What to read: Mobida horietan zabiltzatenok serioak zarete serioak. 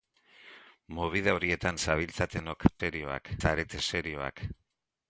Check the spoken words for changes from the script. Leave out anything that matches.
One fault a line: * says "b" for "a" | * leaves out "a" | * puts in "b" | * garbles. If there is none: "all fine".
all fine